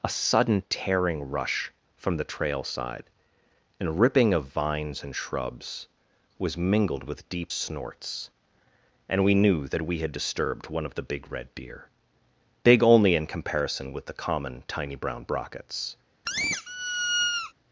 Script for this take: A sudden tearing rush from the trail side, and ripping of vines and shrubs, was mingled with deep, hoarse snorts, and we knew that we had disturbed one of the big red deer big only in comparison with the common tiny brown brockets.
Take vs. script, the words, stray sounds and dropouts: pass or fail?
fail